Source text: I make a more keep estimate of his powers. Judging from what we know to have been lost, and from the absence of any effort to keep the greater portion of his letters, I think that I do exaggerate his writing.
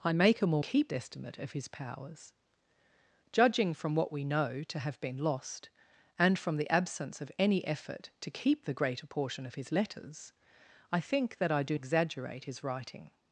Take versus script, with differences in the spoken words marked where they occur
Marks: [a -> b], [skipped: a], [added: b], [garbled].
I make a more keep estimate of his powers. Judging from what we know to have been lost, and from the absence of any effort to keep the greater portion of his letters, I think that I do exaggerate his writing.